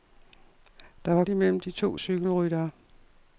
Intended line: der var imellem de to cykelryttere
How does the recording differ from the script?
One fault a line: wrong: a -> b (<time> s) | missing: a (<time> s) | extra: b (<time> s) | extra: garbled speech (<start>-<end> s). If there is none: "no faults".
no faults